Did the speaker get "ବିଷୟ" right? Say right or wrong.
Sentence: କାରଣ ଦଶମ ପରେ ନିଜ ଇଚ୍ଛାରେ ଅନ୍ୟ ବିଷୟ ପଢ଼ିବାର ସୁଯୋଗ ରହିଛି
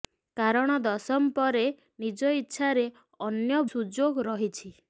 wrong